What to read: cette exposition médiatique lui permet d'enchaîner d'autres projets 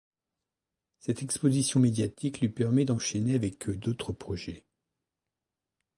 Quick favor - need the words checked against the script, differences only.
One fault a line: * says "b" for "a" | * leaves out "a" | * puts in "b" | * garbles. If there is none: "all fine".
* puts in "avec"